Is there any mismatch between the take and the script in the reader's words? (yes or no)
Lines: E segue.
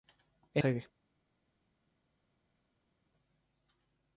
no